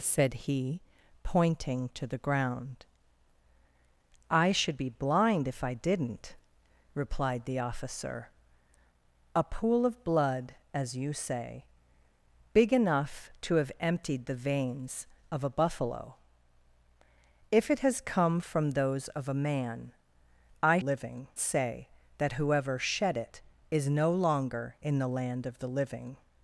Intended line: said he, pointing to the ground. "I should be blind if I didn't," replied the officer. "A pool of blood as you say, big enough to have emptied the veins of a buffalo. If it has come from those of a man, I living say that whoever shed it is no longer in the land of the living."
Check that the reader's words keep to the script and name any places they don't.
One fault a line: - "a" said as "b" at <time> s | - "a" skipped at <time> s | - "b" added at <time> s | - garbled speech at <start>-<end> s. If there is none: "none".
none